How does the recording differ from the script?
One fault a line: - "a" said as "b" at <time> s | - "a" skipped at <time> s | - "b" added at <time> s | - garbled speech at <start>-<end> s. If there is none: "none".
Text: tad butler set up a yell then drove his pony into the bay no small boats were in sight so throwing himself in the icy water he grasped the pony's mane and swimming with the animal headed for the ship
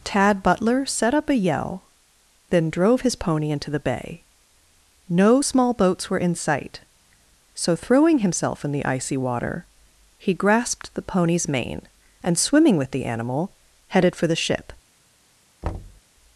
none